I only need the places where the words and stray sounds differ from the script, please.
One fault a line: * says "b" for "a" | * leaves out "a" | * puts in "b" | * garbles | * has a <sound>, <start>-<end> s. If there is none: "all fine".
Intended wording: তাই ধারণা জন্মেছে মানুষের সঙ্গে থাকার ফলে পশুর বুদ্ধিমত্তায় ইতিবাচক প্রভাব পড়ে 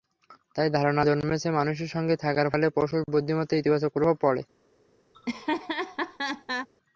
* has a laugh, 5.1-6.7 s